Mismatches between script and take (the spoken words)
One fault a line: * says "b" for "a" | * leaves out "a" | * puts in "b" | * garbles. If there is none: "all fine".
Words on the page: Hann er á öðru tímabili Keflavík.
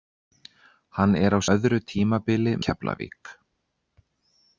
all fine